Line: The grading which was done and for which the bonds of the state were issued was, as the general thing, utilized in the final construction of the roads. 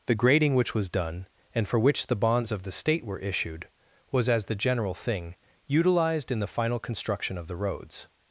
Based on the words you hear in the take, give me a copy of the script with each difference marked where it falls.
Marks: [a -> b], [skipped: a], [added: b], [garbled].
The grading which was done and for which the bonds of the state were issued was, as the general thing, utilized in the final construction of the roads.